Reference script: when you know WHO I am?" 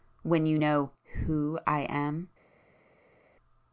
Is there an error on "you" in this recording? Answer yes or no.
no